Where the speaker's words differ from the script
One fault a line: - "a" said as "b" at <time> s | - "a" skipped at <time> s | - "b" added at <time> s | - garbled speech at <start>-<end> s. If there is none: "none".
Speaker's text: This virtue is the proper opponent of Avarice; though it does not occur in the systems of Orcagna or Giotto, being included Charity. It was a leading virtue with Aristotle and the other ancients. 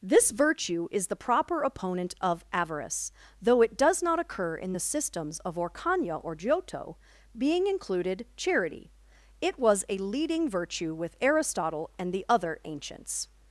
none